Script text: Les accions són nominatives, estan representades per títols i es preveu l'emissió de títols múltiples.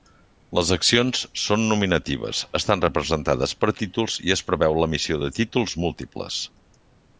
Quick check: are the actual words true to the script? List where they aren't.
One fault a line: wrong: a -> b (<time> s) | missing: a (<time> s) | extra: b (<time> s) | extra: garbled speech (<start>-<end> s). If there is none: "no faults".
no faults